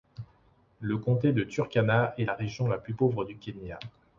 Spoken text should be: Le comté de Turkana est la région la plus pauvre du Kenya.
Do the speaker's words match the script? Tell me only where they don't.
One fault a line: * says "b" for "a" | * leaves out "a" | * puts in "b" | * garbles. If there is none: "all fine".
all fine